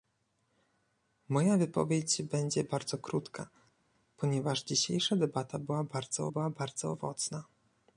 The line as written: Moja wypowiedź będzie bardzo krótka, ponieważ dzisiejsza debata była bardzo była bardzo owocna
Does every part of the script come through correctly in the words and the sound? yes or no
yes